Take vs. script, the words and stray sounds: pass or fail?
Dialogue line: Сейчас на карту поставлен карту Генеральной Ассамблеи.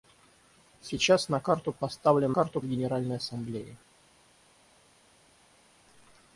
pass